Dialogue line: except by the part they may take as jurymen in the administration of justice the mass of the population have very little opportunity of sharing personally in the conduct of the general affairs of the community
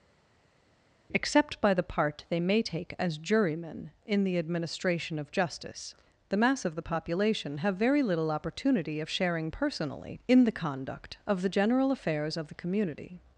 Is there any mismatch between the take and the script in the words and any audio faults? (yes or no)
no